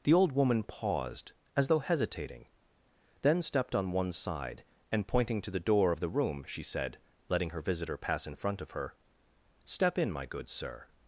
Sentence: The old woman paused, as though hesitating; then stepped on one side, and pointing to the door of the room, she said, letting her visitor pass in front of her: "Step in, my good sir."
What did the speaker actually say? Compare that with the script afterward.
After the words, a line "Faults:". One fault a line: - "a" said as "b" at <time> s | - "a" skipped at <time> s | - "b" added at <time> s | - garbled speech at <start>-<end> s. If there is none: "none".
The old woman paused, as though hesitating; then stepped on one side, and pointing to the door of the room, she said, letting her visitor pass in front of her: "Step in, my good sir."
Faults:
none